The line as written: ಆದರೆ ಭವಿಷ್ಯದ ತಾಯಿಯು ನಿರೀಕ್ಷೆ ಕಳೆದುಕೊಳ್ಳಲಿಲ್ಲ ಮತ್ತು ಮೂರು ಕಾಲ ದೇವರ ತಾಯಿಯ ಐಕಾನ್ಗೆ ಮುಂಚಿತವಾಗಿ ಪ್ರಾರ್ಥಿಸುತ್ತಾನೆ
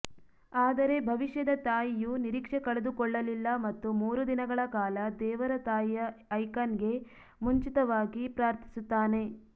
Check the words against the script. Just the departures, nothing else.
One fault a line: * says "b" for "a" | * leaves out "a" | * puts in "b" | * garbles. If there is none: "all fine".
* puts in "ದಿನಗಳ"